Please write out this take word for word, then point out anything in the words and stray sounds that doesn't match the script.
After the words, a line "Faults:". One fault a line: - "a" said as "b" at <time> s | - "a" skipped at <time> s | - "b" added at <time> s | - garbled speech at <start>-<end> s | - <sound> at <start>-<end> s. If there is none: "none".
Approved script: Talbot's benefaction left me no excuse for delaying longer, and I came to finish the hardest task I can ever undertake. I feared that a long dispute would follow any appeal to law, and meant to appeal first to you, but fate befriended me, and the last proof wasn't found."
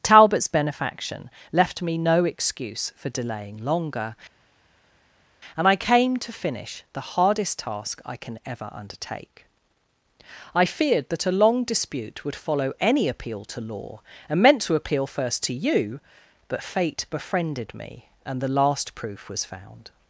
Talbot's benefaction left me no excuse for delaying longer, and I came to finish the hardest task I can ever undertake. I feared that a long dispute would follow any appeal to law, and meant to appeal first to you, but fate befriended me, and the last proof was found."
Faults:
- "wasn't" said as "was" at 19.3 s